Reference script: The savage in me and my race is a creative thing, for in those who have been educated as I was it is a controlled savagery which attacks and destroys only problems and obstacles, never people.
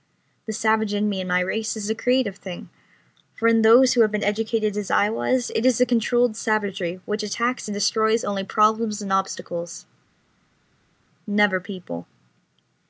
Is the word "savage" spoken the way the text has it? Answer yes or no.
yes